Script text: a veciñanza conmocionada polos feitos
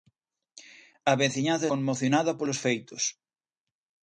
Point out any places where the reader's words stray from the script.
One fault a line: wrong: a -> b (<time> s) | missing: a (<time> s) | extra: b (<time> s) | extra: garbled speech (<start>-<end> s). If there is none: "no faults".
no faults